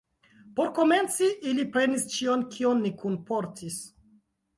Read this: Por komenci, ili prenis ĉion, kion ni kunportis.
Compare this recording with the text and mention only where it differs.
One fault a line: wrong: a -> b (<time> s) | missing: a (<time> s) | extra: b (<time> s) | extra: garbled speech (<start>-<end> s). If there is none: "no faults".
no faults